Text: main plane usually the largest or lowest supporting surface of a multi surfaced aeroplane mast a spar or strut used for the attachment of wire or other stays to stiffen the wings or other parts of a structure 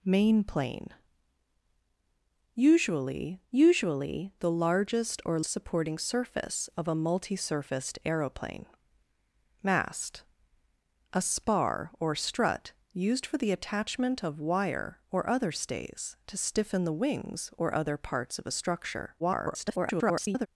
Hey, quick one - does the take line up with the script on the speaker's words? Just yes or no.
no